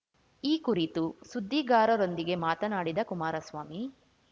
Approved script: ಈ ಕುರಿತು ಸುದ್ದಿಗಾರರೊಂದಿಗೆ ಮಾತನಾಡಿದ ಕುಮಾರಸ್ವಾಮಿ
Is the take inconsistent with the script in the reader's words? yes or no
no